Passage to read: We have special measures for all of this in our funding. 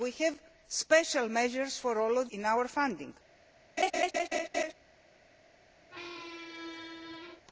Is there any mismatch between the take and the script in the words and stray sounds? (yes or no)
yes